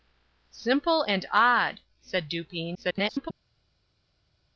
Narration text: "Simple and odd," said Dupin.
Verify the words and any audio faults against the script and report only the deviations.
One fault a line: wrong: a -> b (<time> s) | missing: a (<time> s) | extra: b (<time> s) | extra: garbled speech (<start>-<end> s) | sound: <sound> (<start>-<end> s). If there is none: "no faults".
extra: garbled speech (2.7-3.3 s)